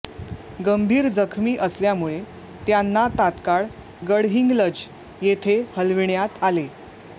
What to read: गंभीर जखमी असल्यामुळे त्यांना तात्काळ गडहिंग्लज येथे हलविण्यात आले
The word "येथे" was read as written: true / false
true